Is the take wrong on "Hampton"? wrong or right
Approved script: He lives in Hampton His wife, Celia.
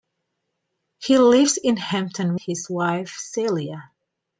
right